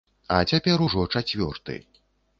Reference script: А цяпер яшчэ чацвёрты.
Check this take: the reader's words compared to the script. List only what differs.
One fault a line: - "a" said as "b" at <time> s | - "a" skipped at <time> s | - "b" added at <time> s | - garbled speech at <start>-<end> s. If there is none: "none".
- "яшчэ" said as "ужо" at 0.8 s